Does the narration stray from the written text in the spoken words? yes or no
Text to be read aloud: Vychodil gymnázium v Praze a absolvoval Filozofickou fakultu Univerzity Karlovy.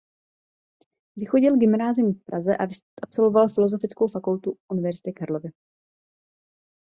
no